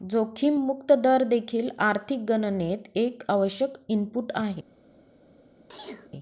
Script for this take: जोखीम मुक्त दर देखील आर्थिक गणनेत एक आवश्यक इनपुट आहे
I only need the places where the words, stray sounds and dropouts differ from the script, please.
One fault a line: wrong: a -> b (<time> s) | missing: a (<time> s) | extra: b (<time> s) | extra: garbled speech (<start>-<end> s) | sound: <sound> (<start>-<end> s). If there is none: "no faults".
sound: sneeze (5.7-6.1 s)